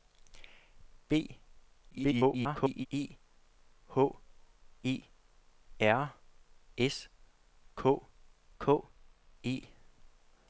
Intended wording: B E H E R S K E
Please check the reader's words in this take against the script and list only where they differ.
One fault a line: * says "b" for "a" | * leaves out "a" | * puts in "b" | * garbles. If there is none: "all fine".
* garbles
* puts in "K"